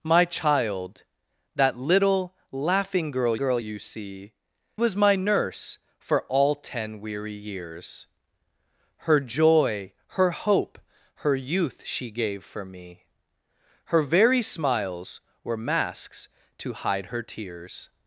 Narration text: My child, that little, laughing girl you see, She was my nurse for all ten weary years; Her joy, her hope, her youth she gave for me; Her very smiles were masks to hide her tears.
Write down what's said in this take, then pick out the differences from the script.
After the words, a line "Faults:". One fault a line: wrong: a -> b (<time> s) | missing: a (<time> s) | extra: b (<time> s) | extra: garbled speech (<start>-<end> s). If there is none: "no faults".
My child, that little, laughing girl girl you see, Was my nurse for all ten weary years; Her joy, her hope, her youth she gave for me; Her very smiles were masks to hide her tears.
Faults:
extra: girl (3.4 s)
missing: She (4.3 s)